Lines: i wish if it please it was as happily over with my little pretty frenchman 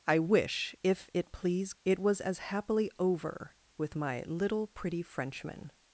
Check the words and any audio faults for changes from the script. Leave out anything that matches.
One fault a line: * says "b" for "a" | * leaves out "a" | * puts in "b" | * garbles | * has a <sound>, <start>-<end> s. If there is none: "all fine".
all fine